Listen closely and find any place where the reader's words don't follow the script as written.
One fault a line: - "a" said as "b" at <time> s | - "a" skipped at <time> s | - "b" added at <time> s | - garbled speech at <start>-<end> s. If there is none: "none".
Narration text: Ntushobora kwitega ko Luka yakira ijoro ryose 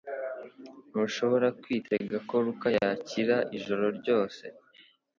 none